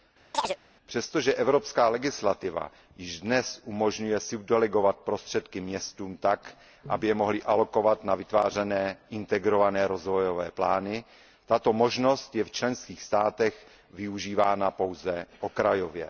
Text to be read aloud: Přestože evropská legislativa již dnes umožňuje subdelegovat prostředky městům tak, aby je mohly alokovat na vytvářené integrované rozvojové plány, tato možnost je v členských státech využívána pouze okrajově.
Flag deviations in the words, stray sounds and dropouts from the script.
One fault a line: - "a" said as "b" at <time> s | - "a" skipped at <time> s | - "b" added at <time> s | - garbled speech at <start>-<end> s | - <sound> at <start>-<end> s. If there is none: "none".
- chirp at 0.3-0.6 s